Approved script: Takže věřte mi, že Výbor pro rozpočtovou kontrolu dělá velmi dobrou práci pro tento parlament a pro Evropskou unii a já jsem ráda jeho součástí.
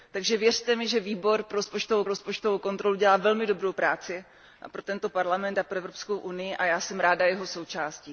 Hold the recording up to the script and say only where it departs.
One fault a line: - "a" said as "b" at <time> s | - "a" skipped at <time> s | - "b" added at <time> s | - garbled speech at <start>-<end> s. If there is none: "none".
- "rozpočtovou" added at 2.1 s